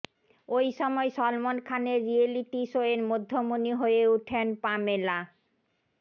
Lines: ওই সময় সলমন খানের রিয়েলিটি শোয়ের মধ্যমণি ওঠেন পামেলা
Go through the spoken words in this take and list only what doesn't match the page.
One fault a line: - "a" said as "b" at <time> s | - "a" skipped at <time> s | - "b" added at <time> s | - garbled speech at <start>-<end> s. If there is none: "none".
- "হয়ে" added at 3.7 s